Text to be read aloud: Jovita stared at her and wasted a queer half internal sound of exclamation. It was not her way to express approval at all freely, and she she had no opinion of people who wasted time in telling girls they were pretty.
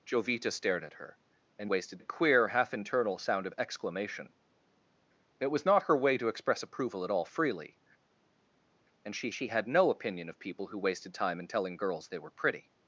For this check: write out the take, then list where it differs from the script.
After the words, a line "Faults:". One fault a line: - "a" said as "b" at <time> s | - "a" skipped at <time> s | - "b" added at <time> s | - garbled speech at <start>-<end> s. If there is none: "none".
Jovita stared at her and wasted a queer half internal sound of exclamation. It was not her way to express approval at all freely, and she she had no opinion of people who wasted time in telling girls they were pretty.
Faults:
none